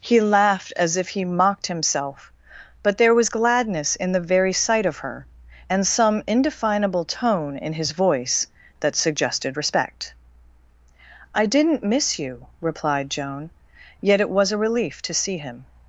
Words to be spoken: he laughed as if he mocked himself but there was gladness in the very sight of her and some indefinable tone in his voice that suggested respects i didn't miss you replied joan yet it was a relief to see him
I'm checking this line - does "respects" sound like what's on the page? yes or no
no